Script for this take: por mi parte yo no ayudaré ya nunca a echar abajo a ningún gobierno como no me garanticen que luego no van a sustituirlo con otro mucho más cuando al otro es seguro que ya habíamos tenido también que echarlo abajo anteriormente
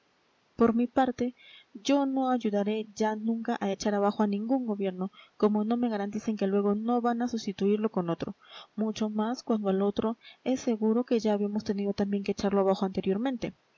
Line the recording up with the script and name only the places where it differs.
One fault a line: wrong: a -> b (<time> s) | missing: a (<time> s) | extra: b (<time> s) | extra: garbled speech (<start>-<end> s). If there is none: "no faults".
no faults